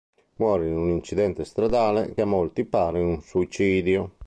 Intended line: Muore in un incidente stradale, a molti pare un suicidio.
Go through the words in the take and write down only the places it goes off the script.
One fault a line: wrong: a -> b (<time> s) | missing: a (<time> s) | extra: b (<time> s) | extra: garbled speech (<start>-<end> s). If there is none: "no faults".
no faults